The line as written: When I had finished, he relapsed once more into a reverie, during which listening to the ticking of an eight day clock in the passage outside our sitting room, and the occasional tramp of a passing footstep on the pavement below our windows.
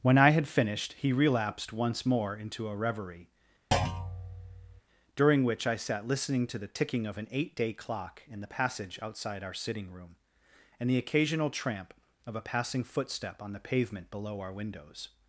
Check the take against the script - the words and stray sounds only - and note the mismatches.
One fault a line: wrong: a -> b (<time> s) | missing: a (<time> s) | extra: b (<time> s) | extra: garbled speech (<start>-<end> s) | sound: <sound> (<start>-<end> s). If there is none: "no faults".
sound: thud (3.7-4.8 s)
extra: I sat (5.7 s)